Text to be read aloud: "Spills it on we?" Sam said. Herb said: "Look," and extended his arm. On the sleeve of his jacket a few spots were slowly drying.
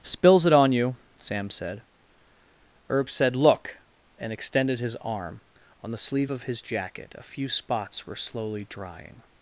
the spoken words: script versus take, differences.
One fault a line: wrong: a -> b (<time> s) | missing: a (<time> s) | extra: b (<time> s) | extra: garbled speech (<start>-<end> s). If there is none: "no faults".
wrong: we -> you (0.7 s)